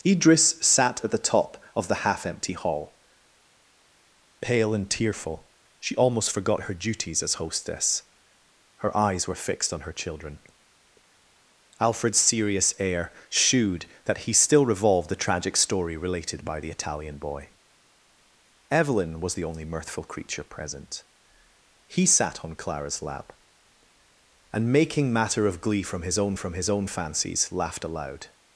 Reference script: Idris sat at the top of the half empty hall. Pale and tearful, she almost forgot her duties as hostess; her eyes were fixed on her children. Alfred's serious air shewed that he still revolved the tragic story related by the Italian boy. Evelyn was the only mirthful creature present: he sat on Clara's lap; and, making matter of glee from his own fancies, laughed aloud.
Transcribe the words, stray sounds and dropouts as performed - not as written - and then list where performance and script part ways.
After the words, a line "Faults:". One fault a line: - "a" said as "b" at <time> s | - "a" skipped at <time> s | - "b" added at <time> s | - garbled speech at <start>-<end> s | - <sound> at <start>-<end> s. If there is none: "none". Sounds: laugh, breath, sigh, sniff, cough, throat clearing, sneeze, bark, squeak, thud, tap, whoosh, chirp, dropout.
Idris sat at the top of the half empty hall. Pale and tearful, she almost forgot her duties as hostess; her eyes were fixed on her children. Alfred's serious air shewed that he still revolved the tragic story related by the Italian boy. Evelyn was the only mirthful creature present: he sat on Clara's lap; and, making matter of glee from his own from his own fancies, laughed aloud.
Faults:
- "from his own" added at 26.3 s